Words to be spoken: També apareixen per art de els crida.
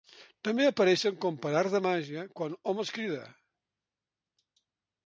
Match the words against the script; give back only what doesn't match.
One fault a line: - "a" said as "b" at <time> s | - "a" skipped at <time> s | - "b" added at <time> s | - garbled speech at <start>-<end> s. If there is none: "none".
- "com" added at 1.2 s
- "màgia quan hom" added at 1.9 s